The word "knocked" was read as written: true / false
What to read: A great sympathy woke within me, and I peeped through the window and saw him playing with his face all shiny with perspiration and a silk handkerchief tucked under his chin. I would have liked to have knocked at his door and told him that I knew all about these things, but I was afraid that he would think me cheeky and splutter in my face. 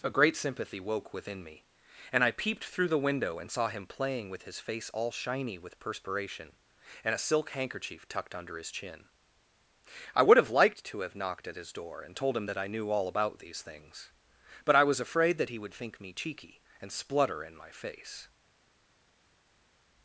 true